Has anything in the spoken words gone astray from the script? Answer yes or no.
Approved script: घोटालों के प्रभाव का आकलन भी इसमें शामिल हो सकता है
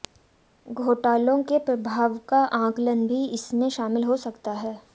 no